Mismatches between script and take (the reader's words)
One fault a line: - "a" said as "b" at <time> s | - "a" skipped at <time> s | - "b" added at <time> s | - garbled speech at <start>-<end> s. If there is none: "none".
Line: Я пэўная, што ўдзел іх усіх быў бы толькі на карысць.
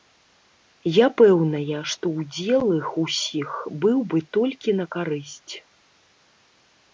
none